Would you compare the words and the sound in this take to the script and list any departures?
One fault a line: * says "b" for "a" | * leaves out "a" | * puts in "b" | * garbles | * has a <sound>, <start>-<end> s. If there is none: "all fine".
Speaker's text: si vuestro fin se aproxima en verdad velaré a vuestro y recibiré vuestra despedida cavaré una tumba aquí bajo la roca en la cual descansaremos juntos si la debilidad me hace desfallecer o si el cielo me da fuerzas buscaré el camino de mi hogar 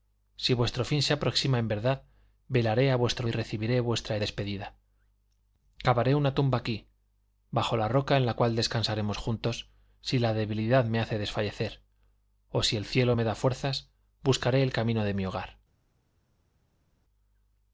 all fine